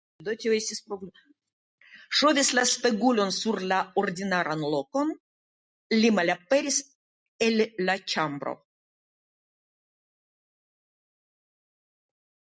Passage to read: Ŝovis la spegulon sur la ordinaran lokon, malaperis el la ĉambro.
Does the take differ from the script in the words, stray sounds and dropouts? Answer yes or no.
yes